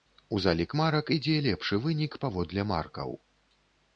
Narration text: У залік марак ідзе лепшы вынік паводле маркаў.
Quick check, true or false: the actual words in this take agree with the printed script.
true